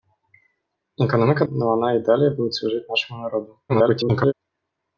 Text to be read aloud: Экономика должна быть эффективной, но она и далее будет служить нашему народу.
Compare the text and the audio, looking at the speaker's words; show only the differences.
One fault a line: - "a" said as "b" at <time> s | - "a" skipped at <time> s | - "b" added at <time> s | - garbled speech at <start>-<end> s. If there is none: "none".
- "должна быть эффективной" skipped at 1.4 s
- garbled speech at 3.7-4.3 s